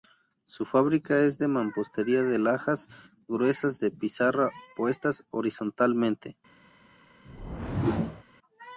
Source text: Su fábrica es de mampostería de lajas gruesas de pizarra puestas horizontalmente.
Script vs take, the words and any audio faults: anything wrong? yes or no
yes